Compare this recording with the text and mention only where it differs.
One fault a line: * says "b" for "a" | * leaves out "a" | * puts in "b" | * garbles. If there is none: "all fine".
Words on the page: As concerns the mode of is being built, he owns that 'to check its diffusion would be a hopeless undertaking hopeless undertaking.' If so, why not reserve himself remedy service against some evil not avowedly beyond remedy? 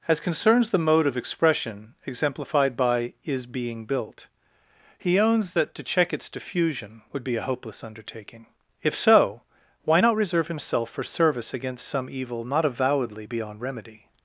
* puts in "expression exemplified by"
* leaves out "hopeless undertaking"
* says "for" for "remedy"